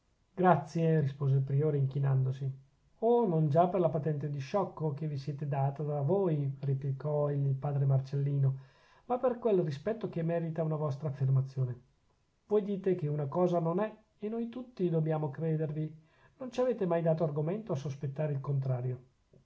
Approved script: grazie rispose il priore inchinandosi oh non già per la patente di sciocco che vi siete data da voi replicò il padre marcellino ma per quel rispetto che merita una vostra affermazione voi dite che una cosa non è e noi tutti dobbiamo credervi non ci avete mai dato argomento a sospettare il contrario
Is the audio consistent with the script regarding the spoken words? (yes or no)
yes